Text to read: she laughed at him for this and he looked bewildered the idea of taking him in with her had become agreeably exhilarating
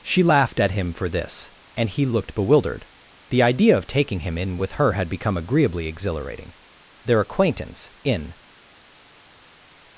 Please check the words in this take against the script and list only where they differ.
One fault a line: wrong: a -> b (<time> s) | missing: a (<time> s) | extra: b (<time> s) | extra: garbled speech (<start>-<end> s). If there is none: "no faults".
extra: their acquaintance in (7.0 s)